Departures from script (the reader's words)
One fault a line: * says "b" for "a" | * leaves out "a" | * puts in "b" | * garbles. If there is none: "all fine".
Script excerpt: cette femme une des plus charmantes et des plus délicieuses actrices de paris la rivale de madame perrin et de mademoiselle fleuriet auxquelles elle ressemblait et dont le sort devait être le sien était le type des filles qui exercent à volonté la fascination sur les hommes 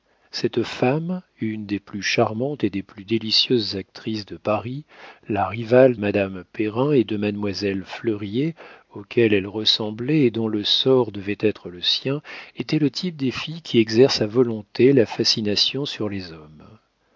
* leaves out "de"